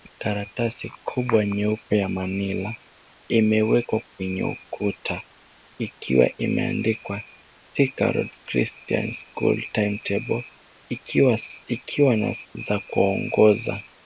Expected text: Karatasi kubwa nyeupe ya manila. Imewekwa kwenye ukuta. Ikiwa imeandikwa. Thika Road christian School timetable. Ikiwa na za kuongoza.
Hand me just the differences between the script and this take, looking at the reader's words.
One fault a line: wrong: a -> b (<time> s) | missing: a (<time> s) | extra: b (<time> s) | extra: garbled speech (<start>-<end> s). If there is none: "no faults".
no faults